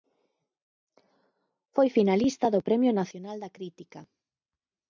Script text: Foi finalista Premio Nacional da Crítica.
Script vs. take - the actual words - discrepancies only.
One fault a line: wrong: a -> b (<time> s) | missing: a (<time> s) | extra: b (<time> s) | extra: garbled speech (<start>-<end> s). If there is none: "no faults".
extra: do (2.5 s)